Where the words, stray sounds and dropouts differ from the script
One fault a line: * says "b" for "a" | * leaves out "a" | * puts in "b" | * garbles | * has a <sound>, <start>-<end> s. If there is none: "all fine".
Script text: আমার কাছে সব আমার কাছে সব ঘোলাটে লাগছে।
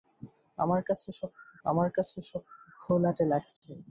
* has a dropout, 3.6-3.6 s